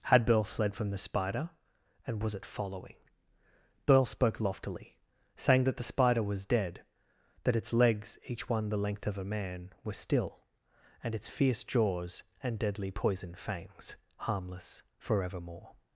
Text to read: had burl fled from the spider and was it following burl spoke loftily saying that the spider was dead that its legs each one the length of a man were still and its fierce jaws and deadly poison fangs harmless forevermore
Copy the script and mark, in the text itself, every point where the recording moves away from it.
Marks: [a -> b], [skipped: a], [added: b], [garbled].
had burl fled from the spider and was it following burl spoke loftily saying that the spider was dead that its legs each one the length of a man were still and its fierce jaws and deadly poison fangs harmless forevermore